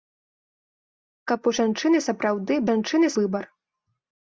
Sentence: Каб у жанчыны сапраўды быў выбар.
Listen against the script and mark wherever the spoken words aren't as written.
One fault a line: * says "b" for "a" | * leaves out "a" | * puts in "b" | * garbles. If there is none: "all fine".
* says "жанчыны" for "быў"